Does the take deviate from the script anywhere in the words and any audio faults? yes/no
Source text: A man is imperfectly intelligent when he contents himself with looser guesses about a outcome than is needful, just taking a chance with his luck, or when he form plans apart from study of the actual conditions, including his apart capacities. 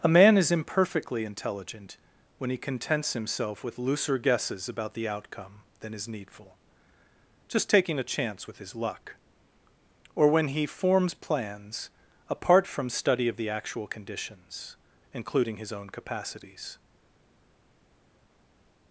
yes